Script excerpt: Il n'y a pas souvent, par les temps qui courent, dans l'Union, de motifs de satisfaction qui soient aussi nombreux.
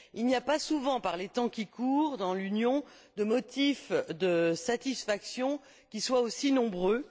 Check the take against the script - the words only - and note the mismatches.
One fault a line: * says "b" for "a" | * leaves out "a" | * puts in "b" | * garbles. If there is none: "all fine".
all fine